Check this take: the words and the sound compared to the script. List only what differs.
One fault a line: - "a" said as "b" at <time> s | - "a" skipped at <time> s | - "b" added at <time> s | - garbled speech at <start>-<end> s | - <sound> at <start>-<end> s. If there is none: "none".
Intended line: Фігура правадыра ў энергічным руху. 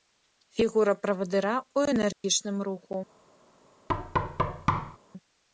- dropout at 2.1-2.2 s
- thud at 3.9-5.0 s